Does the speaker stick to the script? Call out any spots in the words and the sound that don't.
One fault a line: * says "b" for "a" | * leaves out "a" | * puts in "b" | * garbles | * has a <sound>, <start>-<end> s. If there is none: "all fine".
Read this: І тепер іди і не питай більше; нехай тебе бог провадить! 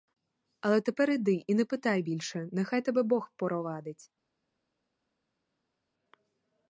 * says "Але" for "І"